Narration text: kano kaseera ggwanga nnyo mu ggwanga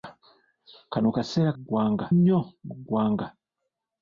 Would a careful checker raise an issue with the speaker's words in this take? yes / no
no